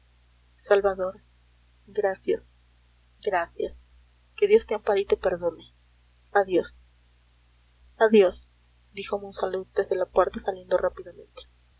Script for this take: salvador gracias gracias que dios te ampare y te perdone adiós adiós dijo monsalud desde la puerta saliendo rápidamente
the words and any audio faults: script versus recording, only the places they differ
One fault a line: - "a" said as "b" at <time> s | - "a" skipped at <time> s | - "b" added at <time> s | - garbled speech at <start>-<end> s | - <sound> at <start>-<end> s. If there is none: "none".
none